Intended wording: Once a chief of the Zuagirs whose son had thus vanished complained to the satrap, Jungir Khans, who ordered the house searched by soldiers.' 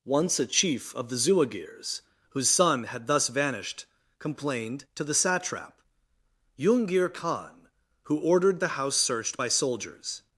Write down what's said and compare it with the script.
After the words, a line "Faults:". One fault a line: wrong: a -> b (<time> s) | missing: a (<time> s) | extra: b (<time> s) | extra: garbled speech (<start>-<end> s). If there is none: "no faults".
Once a chief of the Zuagirs whose son had thus vanished complained to the satrap, Jungir Khan, who ordered the house searched by soldiers.'
Faults:
wrong: Khans -> Khan (7.1 s)